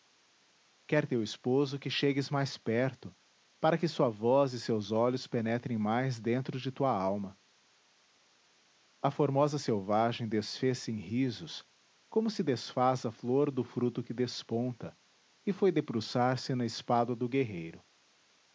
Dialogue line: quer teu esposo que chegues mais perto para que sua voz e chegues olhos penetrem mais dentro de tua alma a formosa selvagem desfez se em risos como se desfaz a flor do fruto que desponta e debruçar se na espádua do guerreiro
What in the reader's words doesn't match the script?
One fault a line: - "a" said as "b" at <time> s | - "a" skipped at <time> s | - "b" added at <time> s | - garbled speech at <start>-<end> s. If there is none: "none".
- "chegues" said as "seus" at 4.6 s
- "foi" added at 15.5 s